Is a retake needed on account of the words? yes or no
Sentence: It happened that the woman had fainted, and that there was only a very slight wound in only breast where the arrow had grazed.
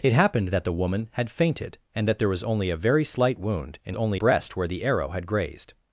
no